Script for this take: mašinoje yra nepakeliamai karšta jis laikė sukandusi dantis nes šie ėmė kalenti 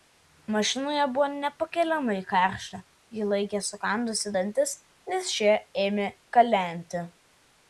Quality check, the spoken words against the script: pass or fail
fail